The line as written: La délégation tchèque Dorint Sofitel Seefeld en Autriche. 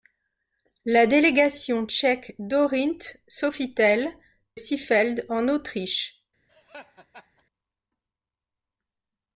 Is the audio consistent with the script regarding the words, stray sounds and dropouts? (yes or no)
no